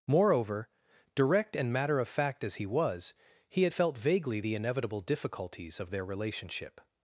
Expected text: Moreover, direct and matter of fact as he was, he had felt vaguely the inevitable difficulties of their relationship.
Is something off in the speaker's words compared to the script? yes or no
no